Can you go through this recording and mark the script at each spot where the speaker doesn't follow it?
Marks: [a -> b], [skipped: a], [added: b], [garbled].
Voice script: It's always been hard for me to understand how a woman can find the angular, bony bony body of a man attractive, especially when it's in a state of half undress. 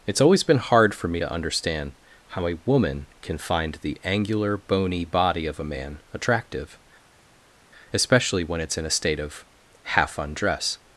It's always been hard for me to understand how a woman can find the angular, bony [skipped: bony] body of a man attractive, especially when it's in a state of half undress.